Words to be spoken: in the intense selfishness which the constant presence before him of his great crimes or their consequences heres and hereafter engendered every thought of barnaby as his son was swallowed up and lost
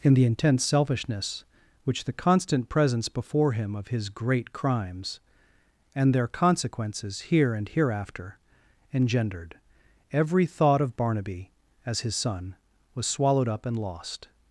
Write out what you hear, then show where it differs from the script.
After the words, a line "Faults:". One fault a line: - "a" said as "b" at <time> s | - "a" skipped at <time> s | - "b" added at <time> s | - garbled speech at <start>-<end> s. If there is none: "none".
in the intense selfishness which the constant presence before him of his great crimes and their consequences here and hereafter engendered every thought of barnaby as his son was swallowed up and lost
Faults:
- "or" said as "and" at 5.9 s
- "heres" said as "here" at 7.2 s